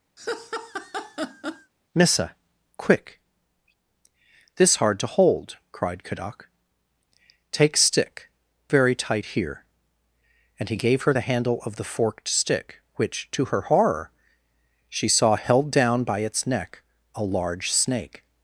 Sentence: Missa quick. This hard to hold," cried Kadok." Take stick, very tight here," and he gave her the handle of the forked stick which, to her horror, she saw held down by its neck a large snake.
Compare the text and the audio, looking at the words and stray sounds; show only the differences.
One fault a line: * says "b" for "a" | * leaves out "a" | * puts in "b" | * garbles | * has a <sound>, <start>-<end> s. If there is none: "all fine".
* has a laugh, 0.2-1.7 s